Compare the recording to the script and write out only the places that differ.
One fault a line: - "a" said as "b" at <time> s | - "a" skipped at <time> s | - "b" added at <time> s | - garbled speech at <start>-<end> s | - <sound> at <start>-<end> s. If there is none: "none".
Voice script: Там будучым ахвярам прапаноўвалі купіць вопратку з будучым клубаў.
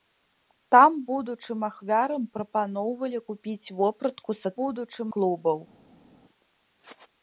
none